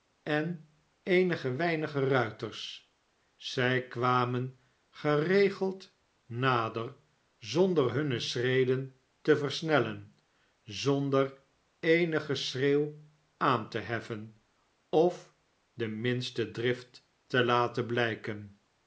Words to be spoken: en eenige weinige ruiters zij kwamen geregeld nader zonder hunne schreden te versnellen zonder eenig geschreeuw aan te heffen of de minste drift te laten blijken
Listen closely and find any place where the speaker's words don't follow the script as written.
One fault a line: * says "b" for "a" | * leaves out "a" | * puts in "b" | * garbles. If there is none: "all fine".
all fine